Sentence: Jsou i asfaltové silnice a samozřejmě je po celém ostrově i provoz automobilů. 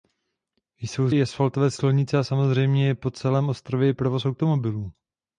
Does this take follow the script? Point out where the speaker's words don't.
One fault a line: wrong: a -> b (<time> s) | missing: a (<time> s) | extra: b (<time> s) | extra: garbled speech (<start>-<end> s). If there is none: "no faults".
no faults